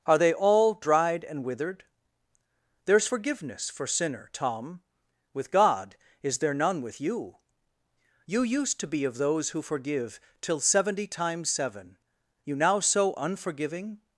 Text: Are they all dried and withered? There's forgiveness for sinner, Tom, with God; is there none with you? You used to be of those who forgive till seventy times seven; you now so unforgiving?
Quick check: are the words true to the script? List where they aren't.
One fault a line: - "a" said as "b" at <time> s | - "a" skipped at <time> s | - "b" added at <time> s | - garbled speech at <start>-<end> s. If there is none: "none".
none